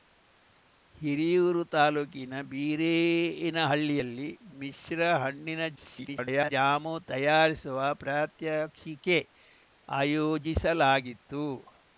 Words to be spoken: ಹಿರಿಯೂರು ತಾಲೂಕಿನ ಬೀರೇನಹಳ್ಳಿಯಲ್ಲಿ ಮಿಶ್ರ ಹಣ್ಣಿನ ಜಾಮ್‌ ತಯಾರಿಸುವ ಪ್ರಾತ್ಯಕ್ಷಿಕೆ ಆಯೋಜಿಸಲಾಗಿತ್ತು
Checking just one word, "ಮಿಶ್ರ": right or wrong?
right